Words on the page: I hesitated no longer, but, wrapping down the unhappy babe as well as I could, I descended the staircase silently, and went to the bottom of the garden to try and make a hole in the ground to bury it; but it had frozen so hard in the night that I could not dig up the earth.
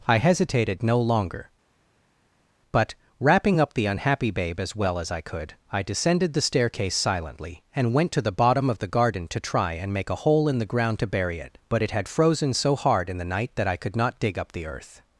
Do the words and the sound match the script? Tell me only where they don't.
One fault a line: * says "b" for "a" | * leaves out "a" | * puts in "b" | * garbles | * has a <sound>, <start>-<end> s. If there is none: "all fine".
* says "up" for "down"